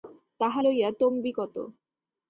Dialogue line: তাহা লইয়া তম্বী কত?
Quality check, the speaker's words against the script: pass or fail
pass